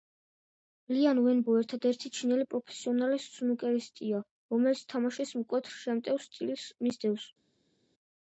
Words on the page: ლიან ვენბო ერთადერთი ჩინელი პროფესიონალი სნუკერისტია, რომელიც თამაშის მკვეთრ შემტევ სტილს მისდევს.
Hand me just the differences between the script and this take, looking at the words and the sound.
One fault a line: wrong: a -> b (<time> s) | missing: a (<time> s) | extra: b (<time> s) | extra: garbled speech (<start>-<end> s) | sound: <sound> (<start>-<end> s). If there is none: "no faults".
no faults